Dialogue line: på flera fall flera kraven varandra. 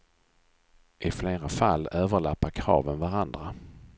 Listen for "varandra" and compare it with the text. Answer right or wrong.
right